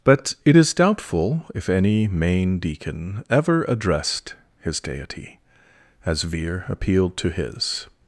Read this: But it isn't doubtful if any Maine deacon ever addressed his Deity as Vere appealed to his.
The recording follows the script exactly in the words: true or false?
false